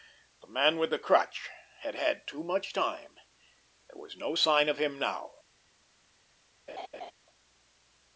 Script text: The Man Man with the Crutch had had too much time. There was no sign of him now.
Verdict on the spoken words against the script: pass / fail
fail